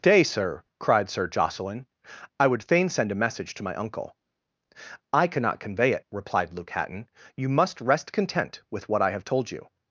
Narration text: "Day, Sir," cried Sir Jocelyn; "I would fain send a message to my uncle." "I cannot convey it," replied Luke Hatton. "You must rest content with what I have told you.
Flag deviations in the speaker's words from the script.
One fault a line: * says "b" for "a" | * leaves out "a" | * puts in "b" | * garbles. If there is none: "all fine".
all fine